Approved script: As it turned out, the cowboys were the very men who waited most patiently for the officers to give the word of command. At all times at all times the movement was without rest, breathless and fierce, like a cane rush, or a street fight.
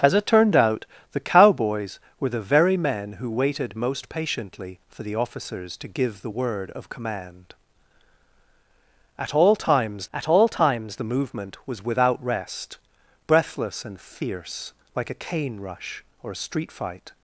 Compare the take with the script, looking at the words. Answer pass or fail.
pass